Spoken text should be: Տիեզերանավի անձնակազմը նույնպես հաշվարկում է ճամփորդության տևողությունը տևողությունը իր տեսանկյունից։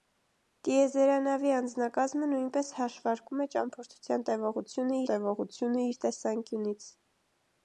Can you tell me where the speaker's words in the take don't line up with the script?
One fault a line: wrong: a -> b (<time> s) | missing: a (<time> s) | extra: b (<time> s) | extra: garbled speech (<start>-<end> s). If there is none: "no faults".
no faults